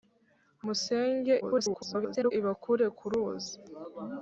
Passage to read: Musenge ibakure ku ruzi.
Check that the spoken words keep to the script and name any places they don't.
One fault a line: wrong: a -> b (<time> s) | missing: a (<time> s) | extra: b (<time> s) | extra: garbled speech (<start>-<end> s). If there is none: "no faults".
extra: garbled speech (1.4-2.3 s)